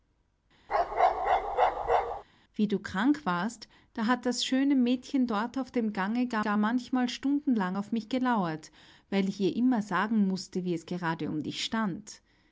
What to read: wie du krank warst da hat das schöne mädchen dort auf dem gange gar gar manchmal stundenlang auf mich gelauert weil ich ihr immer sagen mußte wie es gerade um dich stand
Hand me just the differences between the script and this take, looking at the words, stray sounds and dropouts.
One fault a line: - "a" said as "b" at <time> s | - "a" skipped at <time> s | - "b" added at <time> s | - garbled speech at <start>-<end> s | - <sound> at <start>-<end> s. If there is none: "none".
- bark at 0.7-2.2 s